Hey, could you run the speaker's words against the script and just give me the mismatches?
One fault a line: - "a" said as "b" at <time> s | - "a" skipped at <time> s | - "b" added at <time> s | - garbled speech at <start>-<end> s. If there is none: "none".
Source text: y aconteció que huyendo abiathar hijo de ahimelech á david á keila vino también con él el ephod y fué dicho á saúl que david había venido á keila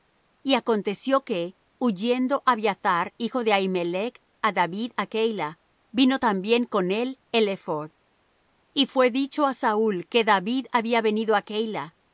none